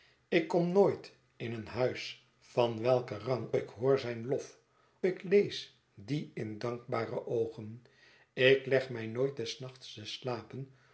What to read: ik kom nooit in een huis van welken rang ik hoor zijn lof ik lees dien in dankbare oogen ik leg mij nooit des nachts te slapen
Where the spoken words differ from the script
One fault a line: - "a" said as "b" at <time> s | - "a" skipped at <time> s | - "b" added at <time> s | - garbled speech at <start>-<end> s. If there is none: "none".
none